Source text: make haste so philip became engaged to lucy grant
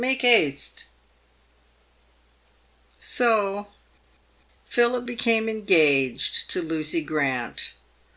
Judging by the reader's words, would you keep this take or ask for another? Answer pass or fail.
pass